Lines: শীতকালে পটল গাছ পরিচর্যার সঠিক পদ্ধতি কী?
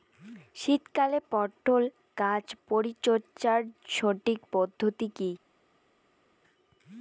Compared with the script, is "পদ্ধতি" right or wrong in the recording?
right